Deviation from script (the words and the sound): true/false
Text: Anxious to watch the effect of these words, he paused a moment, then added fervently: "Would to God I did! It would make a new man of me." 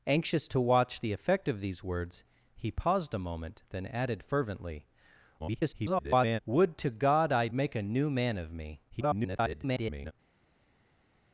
true